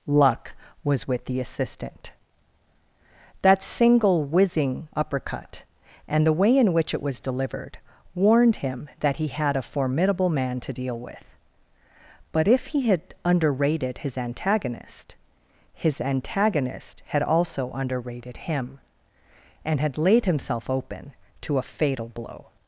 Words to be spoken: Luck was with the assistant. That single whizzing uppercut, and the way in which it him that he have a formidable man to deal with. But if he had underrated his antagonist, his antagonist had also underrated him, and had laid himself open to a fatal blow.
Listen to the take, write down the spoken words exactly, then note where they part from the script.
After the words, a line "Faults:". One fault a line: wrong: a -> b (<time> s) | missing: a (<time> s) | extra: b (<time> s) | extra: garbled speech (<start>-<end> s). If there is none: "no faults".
Luck was with the assistant. That single whizzing uppercut, and the way in which it was delivered, warned him that he had a formidable man to deal with. But if he had underrated his antagonist, his antagonist had also underrated him, and had laid himself open to a fatal blow.
Faults:
extra: was delivered warned (7.0 s)
wrong: have -> had (9.3 s)